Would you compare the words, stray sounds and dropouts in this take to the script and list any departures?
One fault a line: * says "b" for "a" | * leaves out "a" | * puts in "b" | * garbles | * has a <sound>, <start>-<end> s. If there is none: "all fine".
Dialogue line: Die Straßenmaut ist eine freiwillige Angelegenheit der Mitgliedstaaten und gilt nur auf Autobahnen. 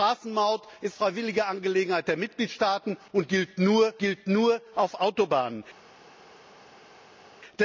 * leaves out "eine"
* puts in "gilt nur"